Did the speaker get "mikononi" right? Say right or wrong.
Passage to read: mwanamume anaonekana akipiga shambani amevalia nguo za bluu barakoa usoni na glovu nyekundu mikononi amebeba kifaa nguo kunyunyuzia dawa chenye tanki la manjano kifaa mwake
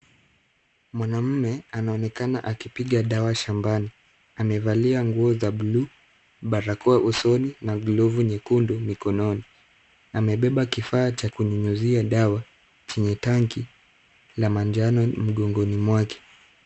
right